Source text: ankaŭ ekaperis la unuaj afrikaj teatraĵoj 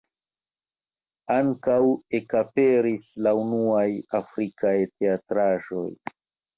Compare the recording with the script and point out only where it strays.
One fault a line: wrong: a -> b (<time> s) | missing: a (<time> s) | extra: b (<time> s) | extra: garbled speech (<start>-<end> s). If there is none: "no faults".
no faults